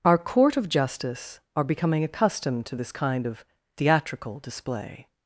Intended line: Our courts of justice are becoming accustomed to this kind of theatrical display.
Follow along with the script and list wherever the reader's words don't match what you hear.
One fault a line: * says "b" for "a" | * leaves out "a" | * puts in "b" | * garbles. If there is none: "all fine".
* says "court" for "courts"